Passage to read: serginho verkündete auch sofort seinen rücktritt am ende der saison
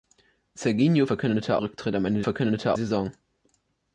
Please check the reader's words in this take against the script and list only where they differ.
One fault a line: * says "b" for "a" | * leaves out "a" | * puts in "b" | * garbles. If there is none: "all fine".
* leaves out "auch sofort seinen"
* says "verkündete" for "der"